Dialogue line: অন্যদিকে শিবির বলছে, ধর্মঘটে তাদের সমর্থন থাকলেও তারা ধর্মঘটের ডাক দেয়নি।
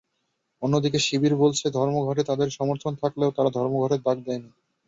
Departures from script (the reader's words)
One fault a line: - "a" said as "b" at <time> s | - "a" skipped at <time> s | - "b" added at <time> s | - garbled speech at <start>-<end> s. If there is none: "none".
none